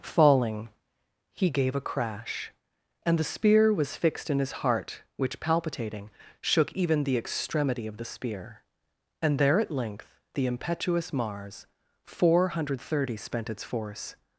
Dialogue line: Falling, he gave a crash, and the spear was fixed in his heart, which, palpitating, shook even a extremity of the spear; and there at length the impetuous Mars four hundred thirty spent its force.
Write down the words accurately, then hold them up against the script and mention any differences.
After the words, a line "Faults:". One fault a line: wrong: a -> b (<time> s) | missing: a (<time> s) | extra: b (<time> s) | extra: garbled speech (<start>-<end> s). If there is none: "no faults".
Falling, he gave a crash, and the spear was fixed in his heart, which, palpitating, shook even the extremity of the spear; and there at length the impetuous Mars four hundred thirty spent its force.
Faults:
wrong: a -> the (7.0 s)